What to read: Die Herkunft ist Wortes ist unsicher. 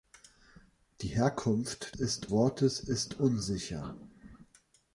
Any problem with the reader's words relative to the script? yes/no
no